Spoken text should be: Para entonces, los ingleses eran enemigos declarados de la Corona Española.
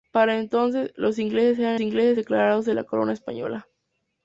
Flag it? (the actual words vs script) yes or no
yes